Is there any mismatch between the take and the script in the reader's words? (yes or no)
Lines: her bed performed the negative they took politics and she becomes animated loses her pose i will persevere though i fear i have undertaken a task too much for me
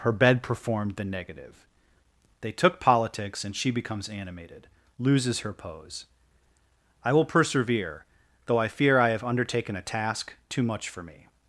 no